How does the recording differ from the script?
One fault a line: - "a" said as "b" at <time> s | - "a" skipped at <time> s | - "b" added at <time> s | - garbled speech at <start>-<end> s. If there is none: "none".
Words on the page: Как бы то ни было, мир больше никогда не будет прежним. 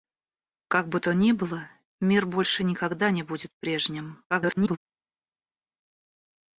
- garbled speech at 4.3-4.8 s